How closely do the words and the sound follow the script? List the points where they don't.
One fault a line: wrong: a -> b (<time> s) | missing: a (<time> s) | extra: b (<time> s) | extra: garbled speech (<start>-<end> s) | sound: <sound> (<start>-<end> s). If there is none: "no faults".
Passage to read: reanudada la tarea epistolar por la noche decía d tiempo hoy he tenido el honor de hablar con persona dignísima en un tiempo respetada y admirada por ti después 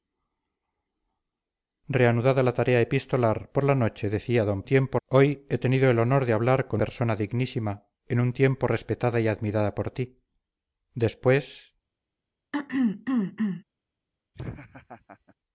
sound: throat clearing (12.5-13.6 s)
sound: laugh (14.3-15.4 s)